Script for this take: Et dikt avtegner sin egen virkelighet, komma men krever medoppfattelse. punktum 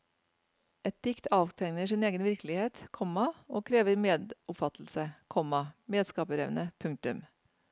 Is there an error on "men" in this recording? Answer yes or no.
yes